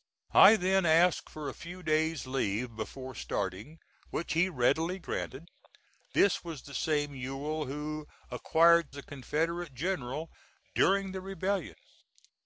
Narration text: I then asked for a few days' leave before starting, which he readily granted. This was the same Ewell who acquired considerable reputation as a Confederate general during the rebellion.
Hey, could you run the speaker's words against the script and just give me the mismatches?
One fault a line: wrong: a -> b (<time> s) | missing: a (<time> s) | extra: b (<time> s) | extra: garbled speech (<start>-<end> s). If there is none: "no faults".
missing: considerable reputation as (8.9 s)